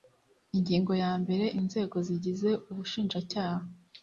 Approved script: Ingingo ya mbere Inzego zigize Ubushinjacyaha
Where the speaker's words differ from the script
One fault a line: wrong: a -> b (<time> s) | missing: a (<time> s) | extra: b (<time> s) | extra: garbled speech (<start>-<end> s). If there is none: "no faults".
no faults